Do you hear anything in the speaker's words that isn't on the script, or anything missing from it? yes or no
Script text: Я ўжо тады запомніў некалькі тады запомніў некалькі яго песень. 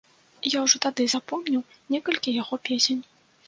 yes